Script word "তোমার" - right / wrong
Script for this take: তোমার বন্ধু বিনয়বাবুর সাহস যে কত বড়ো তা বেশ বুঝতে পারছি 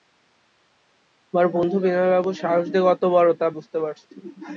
right